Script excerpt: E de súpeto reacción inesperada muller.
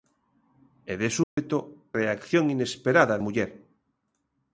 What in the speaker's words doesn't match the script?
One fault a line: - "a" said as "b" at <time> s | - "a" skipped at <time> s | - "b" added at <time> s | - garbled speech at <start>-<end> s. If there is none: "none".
none